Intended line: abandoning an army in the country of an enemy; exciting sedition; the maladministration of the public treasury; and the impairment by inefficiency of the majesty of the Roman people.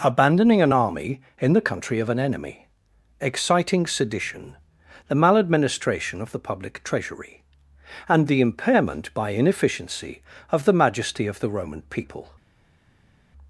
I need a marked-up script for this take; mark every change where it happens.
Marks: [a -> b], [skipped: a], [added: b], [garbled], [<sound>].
abandoning an army in the country of an enemy; exciting sedition; the maladministration of the public treasury; and the impairment by inefficiency of the majesty of the Roman people.